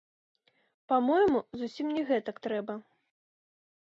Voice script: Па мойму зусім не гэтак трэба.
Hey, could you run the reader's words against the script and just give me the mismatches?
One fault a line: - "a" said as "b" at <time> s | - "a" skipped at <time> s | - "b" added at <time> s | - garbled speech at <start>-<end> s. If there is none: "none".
none